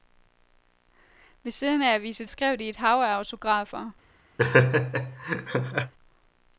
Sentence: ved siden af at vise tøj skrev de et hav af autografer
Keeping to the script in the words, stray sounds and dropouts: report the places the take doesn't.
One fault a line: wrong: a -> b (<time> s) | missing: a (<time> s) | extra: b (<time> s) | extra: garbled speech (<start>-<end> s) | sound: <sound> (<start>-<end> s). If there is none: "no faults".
missing: tøj (2.3 s)
sound: laugh (4.4-5.9 s)